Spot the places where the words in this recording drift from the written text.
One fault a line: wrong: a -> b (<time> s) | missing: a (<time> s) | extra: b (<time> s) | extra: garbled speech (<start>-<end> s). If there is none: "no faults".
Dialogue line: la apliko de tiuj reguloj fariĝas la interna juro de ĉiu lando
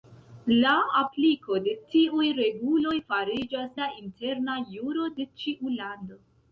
no faults